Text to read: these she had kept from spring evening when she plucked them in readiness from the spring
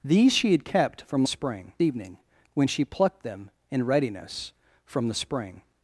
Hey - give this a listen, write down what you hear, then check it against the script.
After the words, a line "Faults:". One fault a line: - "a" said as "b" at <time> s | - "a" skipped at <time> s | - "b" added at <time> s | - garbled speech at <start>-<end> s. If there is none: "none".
these she had kept from spring evening when she plucked them in readiness from the spring
Faults:
none